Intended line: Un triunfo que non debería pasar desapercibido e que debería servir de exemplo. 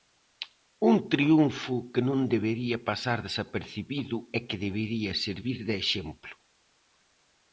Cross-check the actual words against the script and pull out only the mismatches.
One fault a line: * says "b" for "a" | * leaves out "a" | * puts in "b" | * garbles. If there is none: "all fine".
all fine